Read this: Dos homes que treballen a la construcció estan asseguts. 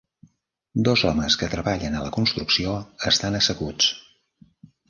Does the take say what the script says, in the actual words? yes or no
yes